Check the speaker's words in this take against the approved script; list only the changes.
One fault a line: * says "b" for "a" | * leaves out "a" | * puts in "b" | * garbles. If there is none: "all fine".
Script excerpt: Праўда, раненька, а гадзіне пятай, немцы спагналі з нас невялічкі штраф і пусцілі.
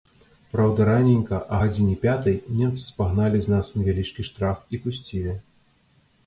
all fine